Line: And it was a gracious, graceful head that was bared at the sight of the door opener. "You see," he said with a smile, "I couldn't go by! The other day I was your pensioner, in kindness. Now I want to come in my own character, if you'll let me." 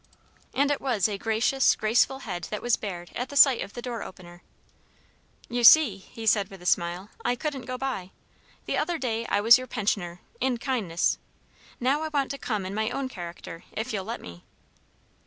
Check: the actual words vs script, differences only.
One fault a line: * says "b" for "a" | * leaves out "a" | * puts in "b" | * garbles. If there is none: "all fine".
all fine